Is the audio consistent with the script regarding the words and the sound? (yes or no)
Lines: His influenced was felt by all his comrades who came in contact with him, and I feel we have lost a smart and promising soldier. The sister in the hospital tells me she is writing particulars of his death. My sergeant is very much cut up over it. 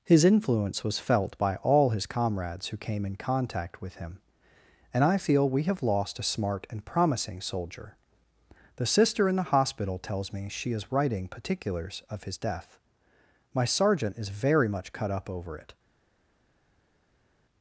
no